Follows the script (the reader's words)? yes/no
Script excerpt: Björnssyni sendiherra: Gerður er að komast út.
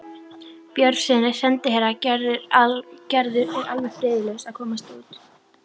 no